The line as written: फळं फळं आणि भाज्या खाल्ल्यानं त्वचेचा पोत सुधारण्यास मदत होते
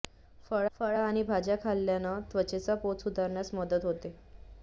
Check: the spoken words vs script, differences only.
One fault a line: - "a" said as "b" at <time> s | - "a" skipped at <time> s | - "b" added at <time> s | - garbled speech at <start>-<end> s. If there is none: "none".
none